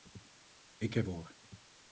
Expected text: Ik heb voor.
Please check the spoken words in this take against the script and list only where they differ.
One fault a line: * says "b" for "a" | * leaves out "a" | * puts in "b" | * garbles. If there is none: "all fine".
all fine